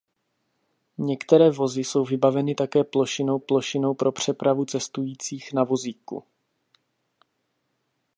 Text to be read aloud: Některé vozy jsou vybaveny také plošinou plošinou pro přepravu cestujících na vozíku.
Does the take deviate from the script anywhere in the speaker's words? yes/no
no